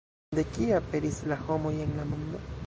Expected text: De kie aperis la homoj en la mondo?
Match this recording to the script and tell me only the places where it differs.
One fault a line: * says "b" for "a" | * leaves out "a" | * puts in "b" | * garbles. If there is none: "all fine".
all fine